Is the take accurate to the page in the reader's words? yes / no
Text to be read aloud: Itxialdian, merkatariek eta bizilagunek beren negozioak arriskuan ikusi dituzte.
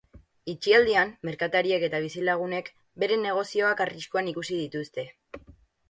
yes